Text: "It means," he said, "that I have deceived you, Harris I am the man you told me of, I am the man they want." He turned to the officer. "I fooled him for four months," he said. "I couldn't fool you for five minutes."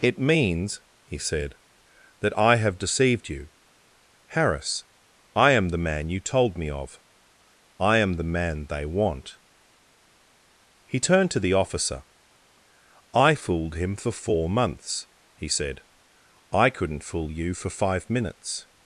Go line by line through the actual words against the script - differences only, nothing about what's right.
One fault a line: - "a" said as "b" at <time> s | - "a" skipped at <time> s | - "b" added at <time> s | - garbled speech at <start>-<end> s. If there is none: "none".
none